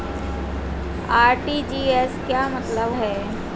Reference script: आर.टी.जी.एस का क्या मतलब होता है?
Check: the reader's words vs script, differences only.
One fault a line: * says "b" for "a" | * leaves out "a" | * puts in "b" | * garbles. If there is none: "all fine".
* leaves out "का"
* leaves out "होता"